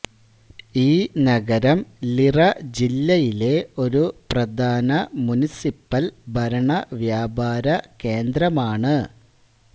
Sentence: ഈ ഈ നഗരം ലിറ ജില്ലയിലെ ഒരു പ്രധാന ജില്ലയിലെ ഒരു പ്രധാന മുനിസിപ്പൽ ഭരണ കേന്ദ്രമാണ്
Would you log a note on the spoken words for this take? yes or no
yes